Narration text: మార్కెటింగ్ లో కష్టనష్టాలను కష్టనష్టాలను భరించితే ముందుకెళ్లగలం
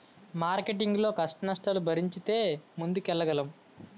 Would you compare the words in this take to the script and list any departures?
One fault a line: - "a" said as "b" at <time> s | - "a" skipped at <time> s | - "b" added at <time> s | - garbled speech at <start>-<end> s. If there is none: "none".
- "కష్టనష్టాలను" skipped at 1.8 s